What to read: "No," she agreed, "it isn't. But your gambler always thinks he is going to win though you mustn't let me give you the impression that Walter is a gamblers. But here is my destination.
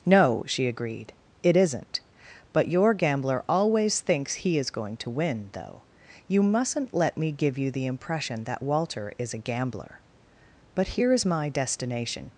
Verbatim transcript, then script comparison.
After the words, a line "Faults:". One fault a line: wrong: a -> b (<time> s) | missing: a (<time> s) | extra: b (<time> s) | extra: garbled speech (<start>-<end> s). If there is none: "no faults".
"No," she agreed, "it isn't. But your gambler always thinks he is going to win though you mustn't let me give you the impression that Walter is a gambler. But here is my destination.
Faults:
wrong: gamblers -> gambler (9.4 s)